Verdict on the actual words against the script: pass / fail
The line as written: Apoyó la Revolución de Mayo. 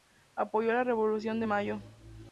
pass